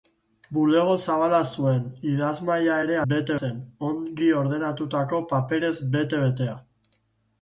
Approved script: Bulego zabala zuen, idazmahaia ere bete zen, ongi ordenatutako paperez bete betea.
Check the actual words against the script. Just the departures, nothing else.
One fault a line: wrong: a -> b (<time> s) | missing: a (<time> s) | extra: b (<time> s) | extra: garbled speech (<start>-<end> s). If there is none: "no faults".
no faults